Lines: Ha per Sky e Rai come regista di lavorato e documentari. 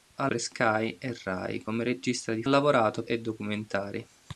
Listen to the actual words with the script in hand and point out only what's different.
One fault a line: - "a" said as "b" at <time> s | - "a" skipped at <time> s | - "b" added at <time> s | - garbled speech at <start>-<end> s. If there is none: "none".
none